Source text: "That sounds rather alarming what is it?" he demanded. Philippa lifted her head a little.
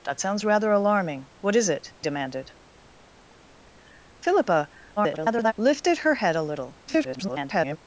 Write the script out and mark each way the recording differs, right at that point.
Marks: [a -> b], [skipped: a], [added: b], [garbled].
"That sounds rather alarming what is it?" [skipped: he] demanded. Philippa [garbled] lifted her head a little. [garbled]